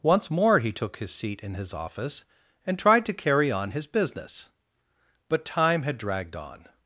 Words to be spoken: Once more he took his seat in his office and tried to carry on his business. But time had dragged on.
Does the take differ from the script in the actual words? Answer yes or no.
no